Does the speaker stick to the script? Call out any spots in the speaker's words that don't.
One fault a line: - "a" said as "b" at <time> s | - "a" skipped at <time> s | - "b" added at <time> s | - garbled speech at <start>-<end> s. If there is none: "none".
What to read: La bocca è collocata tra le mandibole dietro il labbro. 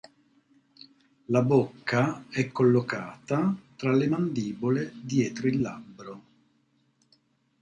none